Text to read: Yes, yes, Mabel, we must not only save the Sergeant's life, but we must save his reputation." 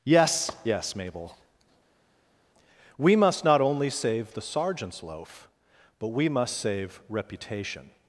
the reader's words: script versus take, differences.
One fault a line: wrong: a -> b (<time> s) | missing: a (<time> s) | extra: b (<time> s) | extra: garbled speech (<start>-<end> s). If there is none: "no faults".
wrong: life -> loaf (5.0 s)
missing: his (7.0 s)